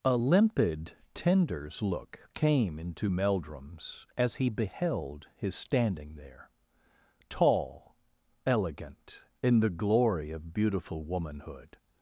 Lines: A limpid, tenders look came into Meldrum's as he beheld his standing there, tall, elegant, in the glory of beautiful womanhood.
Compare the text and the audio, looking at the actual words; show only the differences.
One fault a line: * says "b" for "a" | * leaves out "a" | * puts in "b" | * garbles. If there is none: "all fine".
all fine